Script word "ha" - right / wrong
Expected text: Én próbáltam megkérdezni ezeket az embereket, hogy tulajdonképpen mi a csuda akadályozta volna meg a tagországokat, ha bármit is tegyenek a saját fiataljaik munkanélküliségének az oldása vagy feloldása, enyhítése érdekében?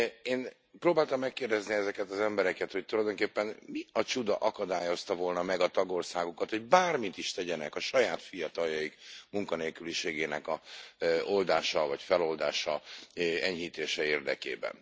wrong